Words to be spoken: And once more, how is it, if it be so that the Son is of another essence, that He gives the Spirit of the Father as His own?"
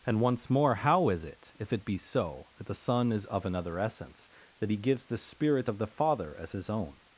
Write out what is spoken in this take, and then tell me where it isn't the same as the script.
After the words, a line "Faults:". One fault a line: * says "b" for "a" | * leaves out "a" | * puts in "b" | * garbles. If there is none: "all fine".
And once more, how is it, if it be so that the Son is of another essence, that He gives the Spirit of the Father as His own?"
Faults:
all fine